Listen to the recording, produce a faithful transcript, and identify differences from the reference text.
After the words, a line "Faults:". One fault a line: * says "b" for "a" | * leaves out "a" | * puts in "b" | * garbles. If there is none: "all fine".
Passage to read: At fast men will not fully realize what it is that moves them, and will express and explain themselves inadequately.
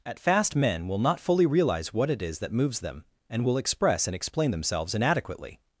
At fast men will not fully realize what it is that moves them, and will express and explain themselves inadequately.
Faults:
all fine